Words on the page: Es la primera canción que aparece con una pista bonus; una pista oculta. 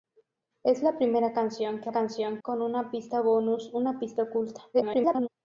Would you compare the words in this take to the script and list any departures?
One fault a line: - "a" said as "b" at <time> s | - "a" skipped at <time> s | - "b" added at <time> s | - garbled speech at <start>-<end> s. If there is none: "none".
- "aparece" said as "canción" at 1.9 s
- garbled speech at 4.7-5.3 s